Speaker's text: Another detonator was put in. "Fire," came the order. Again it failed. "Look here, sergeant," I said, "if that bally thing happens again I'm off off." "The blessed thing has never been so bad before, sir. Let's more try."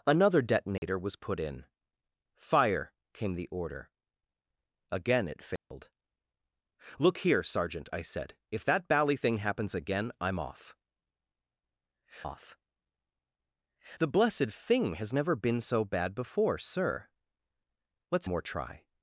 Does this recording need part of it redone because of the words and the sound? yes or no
yes